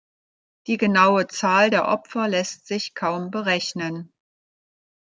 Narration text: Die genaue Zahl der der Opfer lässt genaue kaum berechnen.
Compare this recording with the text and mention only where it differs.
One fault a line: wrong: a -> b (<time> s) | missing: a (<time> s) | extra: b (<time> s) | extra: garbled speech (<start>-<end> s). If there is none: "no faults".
missing: der (1.9 s)
wrong: genaue -> sich (2.7 s)